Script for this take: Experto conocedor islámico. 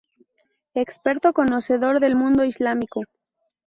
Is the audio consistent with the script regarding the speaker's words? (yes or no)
no